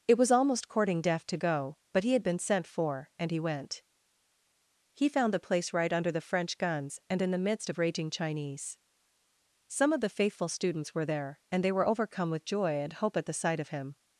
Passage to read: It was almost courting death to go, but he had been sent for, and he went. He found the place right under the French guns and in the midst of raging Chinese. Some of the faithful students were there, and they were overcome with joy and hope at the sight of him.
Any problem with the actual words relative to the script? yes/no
no